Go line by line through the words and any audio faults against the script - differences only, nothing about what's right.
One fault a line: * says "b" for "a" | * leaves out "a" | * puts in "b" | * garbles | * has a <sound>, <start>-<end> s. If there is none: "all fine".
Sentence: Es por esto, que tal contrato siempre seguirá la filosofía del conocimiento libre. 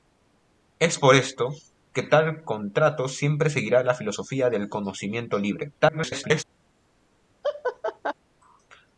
* garbles
* has a laugh, 7.4-8.1 s